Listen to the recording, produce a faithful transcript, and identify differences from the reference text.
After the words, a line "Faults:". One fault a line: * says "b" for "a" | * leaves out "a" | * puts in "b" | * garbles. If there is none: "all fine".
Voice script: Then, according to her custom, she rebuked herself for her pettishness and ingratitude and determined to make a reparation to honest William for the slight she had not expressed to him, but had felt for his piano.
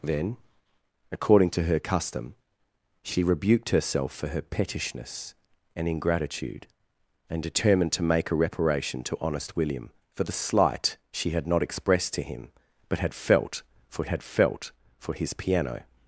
Then, according to her custom, she rebuked herself for her pettishness and ingratitude and determined to make a reparation to honest William for the slight she had not expressed to him, but had felt for had felt for his piano.
Faults:
* puts in "had felt for"